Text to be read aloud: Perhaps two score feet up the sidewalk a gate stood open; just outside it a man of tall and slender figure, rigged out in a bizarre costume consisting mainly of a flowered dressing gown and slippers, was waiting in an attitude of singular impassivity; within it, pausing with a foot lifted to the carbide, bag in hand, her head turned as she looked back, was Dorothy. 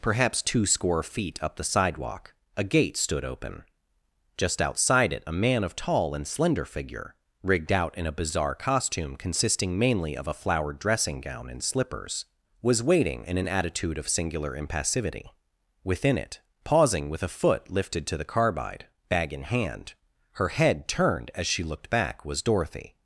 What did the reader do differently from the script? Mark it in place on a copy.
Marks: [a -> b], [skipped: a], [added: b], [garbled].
Perhaps two score feet up the sidewalk a gate stood open; just outside it a man of tall and slender figure, rigged out in a bizarre costume consisting mainly of a flowered dressing gown and slippers, was waiting in an attitude of singular impassivity; within it, pausing with a foot lifted to the carbide, bag in hand, her head turned as she looked back, was Dorothy.